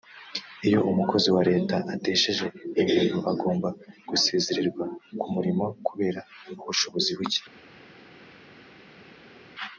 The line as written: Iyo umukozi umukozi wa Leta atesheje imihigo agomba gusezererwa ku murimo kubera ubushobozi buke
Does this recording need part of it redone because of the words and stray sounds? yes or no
yes